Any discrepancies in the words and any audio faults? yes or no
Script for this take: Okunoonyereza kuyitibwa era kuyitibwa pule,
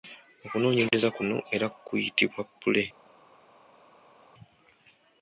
yes